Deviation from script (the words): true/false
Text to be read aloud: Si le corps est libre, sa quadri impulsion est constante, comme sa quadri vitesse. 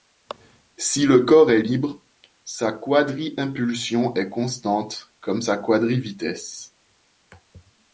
false